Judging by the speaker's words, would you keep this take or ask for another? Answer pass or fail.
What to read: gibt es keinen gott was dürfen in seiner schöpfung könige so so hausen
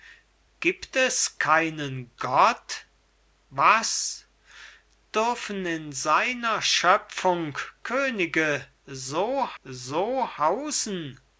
pass